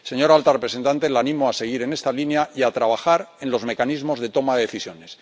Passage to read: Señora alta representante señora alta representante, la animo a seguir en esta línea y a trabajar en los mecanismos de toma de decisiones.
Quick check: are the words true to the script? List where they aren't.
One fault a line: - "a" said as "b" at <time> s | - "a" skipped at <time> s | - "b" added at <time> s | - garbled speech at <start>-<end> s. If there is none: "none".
- "señora alta representante" skipped at 1.1 s